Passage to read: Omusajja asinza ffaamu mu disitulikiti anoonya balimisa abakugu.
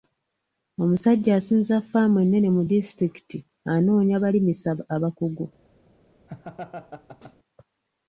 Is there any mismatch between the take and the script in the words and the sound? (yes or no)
yes